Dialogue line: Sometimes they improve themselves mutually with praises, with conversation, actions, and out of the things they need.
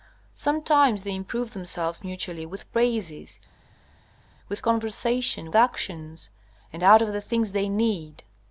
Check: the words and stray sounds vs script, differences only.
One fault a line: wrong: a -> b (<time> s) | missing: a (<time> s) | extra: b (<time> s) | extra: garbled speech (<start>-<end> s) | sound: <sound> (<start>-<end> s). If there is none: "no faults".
no faults